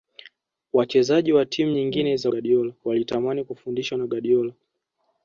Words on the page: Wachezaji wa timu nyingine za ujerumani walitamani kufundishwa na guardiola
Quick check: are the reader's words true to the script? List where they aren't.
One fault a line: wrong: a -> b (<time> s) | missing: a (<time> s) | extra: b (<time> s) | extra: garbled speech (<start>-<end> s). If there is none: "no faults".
wrong: ujerumani -> guardiola (2.3 s)